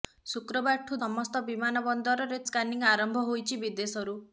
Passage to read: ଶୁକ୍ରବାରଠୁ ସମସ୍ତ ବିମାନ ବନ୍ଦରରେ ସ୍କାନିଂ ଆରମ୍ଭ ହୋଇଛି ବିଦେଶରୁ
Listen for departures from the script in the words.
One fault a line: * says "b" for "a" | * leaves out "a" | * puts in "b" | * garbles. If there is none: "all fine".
all fine